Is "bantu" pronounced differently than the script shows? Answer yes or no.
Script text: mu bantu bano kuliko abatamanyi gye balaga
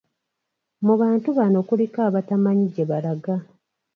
no